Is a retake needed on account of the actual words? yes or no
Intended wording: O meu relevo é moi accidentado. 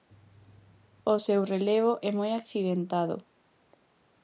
yes